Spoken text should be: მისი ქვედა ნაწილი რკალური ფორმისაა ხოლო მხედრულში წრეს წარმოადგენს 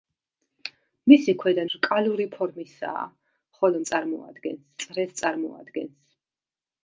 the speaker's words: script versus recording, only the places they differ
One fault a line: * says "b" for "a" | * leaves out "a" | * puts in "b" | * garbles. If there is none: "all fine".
* leaves out "ნაწილი"
* says "წარმოადგენს" for "მხედრულში"